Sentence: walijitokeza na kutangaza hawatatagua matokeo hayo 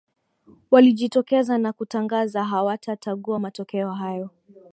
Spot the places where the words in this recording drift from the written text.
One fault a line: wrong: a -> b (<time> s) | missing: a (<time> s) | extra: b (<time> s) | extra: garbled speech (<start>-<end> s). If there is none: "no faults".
no faults